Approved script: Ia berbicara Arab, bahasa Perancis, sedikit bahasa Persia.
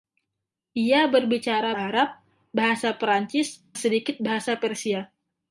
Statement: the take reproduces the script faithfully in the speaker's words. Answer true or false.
true